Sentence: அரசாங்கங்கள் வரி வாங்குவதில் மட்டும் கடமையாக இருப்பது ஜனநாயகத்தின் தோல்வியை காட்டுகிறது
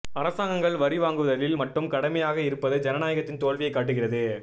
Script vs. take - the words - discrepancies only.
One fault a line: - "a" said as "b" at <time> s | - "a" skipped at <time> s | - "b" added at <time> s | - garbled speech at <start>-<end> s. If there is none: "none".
none